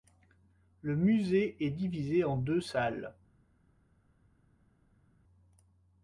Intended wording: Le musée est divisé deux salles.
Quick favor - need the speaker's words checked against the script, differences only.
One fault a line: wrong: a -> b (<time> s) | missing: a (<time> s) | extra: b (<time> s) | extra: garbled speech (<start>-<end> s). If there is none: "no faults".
extra: en (2.2 s)